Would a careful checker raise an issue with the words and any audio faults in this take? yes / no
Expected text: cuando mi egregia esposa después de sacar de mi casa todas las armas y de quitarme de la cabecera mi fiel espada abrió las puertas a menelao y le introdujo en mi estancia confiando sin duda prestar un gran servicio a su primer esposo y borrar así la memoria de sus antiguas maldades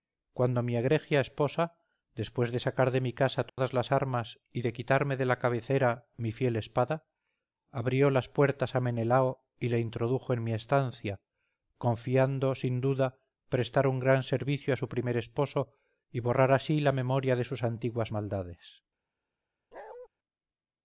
yes